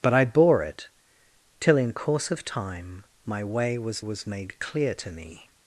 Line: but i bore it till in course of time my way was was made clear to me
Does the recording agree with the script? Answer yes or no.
yes